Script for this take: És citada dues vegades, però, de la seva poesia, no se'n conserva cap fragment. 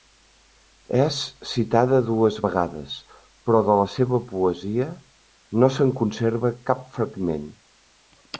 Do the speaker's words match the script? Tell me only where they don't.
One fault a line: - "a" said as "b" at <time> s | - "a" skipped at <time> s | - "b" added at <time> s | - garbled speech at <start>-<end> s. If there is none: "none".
none